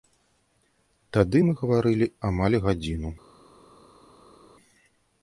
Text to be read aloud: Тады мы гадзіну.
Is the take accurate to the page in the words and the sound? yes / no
no